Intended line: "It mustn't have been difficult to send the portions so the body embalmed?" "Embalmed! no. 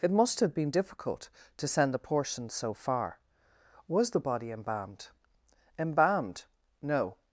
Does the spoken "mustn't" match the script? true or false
false